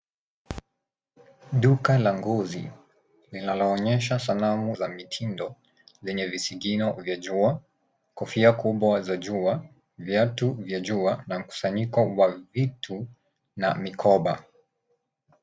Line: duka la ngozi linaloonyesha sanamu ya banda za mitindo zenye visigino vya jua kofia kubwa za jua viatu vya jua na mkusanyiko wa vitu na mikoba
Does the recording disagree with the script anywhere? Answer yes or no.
yes